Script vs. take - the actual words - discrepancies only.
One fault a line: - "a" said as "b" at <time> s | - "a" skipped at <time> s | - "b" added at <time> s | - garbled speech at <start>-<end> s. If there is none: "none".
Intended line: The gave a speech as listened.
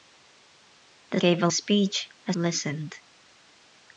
none